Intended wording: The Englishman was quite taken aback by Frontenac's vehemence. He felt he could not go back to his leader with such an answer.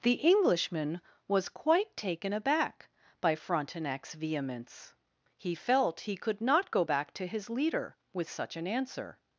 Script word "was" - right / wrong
right